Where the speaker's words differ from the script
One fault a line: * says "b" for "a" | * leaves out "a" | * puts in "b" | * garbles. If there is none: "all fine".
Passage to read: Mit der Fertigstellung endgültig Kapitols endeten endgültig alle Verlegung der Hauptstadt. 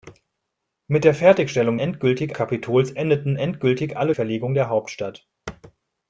all fine